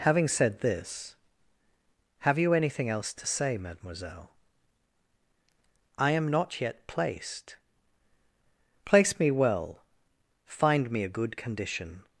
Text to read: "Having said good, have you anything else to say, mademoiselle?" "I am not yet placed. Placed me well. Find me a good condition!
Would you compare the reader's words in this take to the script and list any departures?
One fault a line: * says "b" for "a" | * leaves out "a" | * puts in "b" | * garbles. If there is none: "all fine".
* says "this" for "good"
* says "Place" for "Placed"